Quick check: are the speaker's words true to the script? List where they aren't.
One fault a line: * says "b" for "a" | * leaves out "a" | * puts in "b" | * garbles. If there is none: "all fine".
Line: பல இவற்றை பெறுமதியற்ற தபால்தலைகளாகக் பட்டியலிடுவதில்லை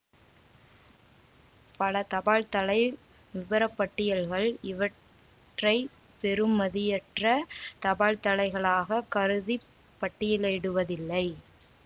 * puts in "தபால்தலை விபரப்பட்டியல்கள்"
* puts in "கருதி"